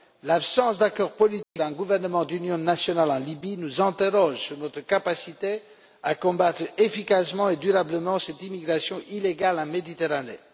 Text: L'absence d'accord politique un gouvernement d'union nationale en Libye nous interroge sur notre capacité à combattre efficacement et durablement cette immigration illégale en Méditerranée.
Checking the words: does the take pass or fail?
pass